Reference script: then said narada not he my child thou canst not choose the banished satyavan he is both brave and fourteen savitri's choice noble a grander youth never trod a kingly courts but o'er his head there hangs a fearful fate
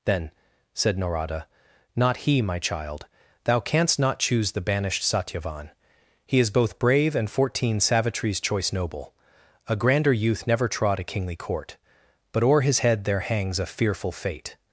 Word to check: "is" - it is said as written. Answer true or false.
true